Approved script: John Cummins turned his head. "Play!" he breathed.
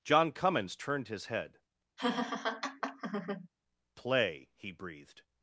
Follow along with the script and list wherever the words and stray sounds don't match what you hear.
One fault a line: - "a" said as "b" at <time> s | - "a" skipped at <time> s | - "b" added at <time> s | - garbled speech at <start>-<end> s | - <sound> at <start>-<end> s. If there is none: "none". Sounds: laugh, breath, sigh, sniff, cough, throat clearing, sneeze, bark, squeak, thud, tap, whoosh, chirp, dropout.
- laugh at 2.0-3.5 s